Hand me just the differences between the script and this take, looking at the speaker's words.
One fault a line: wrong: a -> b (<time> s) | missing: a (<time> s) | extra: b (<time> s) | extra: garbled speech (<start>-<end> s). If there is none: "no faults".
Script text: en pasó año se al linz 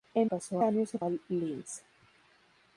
no faults